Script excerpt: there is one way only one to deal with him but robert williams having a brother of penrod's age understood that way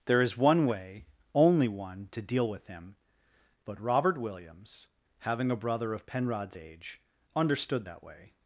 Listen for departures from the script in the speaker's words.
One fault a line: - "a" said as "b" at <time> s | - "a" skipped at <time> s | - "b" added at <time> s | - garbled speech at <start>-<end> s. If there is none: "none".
none